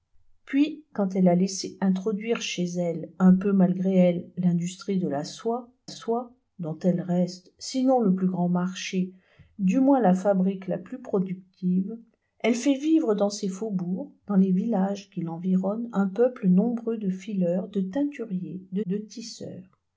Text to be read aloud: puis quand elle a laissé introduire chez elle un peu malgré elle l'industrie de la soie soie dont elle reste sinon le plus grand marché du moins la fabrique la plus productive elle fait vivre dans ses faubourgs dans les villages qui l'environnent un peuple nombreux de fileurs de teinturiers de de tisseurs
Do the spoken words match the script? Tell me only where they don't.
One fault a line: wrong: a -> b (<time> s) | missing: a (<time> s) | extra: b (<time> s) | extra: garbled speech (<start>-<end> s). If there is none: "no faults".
no faults